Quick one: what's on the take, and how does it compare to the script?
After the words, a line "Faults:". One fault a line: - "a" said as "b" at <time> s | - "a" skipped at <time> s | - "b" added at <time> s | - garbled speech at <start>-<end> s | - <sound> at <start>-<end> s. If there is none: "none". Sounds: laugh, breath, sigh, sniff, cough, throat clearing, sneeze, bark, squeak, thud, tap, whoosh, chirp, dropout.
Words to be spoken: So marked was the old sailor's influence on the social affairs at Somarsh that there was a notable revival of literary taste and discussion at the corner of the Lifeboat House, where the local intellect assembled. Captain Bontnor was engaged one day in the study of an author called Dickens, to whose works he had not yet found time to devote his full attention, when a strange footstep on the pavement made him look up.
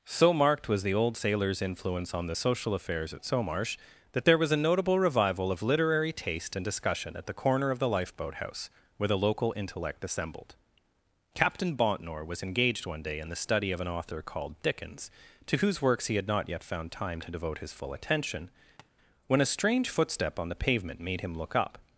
So marked was the old sailor's influence on the social affairs at Somarsh that there was a notable revival of literary taste and discussion at the corner of the Lifeboat House, where the local intellect assembled. Captain Bontnor was engaged one day in the study of an author called Dickens, to whose works he had not yet found time to devote his full attention, when a strange footstep on the pavement made him look up.
Faults:
- tap at 18.8-18.9 s